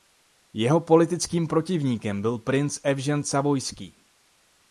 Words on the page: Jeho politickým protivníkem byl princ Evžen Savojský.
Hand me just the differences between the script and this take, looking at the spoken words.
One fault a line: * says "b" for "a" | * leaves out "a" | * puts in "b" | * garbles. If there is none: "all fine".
all fine